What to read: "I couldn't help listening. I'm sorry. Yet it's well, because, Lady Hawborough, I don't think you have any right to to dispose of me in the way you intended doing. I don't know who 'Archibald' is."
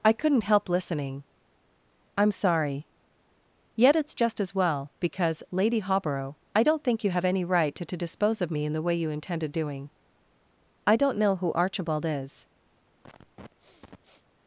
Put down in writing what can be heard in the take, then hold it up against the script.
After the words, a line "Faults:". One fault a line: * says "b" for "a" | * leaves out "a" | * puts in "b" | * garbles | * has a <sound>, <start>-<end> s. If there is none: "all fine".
"I couldn't help listening. I'm sorry. Yet it's just as well, because, Lady Hawborough, I don't think you have any right to to dispose of me in the way you intended doing. I don't know who 'Archibald' is."
Faults:
* puts in "just as"
* has a sniff, 13.0-14.3 s